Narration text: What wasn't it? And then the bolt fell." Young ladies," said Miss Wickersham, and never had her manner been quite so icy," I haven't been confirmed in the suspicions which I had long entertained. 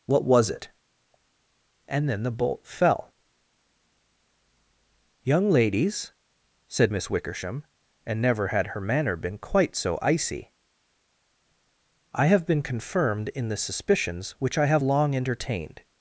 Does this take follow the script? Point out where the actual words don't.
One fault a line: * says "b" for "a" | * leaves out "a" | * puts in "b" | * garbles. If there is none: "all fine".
* says "was" for "wasn't"
* says "have" for "haven't"
* says "have" for "had"